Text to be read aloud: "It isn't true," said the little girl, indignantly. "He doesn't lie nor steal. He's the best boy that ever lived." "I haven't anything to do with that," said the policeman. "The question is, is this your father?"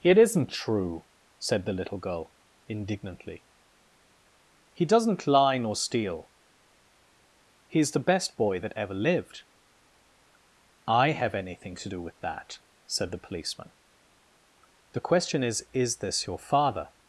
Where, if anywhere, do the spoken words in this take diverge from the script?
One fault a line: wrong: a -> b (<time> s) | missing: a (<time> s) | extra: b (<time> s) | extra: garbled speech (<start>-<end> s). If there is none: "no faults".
wrong: haven't -> have (11.1 s)